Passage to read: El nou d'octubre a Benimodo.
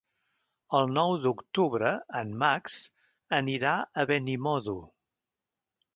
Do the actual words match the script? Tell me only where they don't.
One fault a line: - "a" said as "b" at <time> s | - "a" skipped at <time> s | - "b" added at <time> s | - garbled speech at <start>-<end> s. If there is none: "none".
- "en Max anirà" added at 2.2 s